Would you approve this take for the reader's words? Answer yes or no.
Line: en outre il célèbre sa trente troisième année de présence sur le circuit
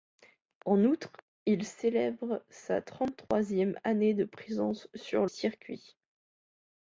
no